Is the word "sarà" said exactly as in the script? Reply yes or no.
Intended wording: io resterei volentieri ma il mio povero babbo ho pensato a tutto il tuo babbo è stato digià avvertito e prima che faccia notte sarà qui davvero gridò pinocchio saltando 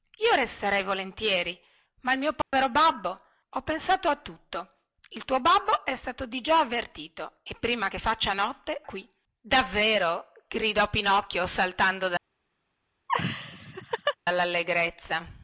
no